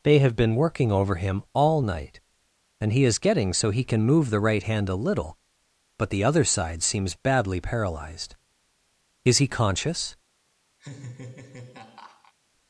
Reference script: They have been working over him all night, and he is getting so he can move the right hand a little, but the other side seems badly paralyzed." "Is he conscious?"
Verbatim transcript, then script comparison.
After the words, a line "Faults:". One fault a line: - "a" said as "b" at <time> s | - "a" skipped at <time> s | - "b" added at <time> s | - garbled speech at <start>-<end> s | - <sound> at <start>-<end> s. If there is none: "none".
They have been working over him all night, and he is getting so he can move the right hand a little, but the other side seems badly paralyzed." "Is he conscious?"
Faults:
- laugh at 10.8-12.3 s